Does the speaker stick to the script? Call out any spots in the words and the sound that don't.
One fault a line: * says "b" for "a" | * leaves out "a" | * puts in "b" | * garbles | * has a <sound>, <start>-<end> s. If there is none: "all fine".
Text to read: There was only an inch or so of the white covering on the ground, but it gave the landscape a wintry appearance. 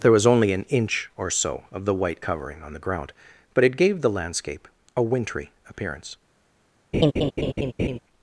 * has a laugh, 6.9-8.0 s